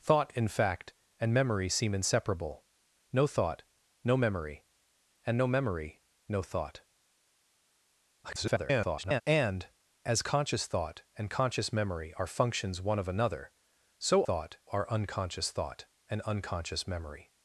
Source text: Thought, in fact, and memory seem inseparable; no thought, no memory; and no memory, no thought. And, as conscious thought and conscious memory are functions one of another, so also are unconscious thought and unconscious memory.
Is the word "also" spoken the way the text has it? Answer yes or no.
no